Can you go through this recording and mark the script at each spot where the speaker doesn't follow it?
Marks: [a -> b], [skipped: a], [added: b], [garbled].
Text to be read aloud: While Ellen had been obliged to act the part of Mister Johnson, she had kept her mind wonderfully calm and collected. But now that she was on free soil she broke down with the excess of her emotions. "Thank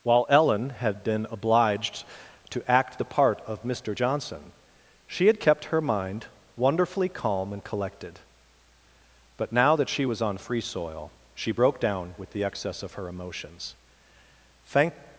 While Ellen had been obliged to act the part of Mister Johnson, she had kept her mind wonderfully calm and collected. But now that she was on free soil she broke down with the excess of her emotions. "Thank